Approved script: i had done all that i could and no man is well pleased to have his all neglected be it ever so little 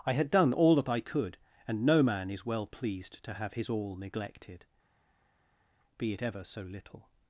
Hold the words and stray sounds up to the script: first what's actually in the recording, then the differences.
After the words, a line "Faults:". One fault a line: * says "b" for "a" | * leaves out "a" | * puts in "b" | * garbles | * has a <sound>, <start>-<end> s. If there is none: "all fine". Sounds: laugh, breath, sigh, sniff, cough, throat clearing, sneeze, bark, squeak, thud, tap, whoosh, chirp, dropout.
i had done all that i could and no man is well pleased to have his all neglected be it ever so little
Faults:
all fine